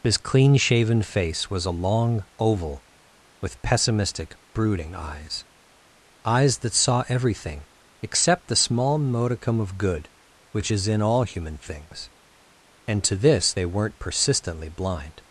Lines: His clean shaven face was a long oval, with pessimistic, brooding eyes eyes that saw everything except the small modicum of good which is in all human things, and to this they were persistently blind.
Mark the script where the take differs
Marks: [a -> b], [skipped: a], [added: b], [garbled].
His clean shaven face was a long oval, with pessimistic, brooding eyes eyes that saw everything except the small modicum of good which is in all human things, and to this they [were -> weren't] persistently blind.